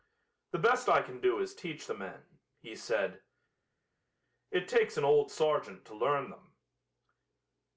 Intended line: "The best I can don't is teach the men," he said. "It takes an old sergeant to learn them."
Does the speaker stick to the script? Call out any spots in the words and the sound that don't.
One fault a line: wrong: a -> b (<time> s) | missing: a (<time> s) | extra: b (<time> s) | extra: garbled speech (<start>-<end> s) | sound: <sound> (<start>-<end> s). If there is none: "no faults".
wrong: don't -> do (1.2 s)